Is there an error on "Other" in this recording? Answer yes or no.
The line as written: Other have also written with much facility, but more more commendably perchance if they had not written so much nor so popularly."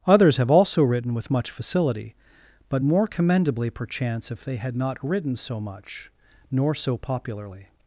yes